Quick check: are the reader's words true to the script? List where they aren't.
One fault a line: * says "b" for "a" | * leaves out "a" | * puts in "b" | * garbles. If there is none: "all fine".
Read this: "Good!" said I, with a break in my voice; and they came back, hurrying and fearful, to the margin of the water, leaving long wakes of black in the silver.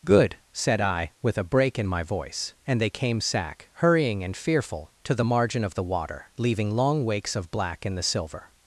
* says "sack" for "back"